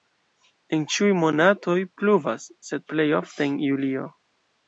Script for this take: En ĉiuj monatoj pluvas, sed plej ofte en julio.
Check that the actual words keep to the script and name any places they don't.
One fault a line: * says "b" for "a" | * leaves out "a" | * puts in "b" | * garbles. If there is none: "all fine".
all fine